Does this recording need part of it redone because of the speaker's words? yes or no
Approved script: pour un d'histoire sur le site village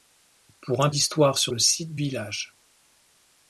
no